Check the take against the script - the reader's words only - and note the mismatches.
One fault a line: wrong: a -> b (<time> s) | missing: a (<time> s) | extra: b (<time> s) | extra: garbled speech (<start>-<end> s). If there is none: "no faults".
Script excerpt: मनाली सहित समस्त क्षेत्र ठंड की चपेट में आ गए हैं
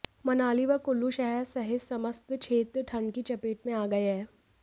extra: व कुल्लू शहर (0.7 s)